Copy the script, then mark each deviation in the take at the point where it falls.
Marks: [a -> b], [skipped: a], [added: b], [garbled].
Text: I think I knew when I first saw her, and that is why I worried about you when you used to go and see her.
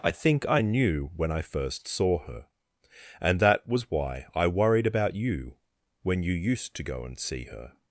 I think I knew when I first saw her, and that [is -> was] why I worried about you when you used to go and see her.